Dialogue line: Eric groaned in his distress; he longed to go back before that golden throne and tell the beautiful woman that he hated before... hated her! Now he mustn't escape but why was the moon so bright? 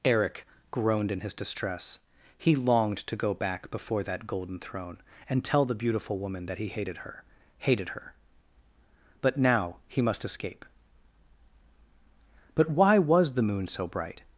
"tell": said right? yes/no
yes